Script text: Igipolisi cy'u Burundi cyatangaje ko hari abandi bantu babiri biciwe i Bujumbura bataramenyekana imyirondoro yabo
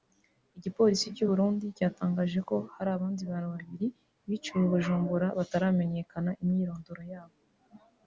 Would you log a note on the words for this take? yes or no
no